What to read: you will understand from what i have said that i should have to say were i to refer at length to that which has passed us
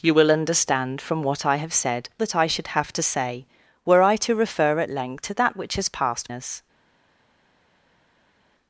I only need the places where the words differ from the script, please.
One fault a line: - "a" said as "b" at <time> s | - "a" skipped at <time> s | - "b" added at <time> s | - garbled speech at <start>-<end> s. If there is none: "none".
none